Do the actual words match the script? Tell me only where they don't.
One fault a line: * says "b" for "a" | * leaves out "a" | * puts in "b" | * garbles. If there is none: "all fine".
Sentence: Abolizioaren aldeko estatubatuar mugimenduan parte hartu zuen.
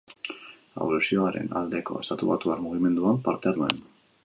* leaves out "hartu"